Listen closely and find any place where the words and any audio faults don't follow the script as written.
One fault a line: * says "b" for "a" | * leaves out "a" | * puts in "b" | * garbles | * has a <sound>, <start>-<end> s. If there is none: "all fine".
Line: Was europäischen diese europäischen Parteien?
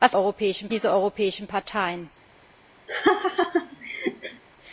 * has a laugh, 2.9-4.4 s